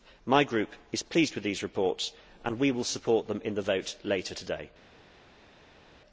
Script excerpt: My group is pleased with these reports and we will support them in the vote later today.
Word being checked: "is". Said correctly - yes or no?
yes